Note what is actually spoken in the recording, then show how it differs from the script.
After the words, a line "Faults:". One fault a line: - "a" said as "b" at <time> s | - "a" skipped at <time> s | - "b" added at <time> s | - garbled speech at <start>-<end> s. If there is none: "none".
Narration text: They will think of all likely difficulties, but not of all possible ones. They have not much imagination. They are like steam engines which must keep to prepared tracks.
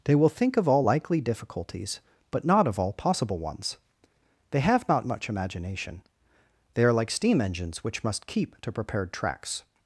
They will think of all likely difficulties, but not of all possible ones. They have not much imagination. They are like steam engines which must keep to prepared tracks.
Faults:
none